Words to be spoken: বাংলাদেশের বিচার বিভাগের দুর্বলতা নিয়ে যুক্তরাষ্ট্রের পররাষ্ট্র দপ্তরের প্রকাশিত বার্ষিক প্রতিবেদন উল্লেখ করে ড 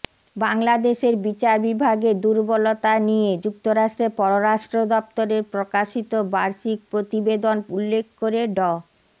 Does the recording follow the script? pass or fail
pass